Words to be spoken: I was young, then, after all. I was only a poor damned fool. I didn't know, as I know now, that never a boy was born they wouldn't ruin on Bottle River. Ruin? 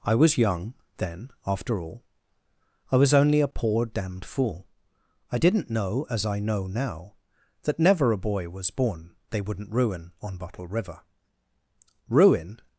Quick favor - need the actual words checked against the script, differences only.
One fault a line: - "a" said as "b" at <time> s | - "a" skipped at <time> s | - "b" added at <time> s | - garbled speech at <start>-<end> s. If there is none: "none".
none